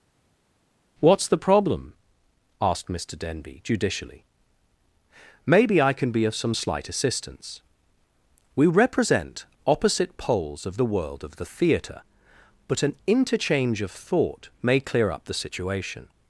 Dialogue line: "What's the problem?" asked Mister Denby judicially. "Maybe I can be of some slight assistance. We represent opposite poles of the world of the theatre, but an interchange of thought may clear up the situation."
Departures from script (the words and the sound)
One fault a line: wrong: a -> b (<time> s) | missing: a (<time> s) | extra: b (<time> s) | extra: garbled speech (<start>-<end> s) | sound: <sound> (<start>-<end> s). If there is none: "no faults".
no faults